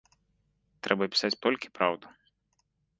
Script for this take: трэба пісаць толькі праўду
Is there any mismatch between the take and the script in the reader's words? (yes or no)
no